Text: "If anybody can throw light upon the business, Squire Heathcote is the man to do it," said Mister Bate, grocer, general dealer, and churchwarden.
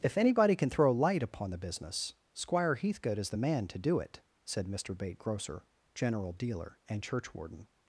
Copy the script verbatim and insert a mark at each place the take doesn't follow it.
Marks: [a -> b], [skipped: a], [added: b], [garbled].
"If anybody can throw light upon the business, Squire Heathcote is the man to do it," said Mister Bate, grocer, general dealer, and churchwarden.